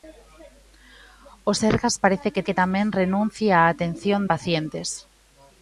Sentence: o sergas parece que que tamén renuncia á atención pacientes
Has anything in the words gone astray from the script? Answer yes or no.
no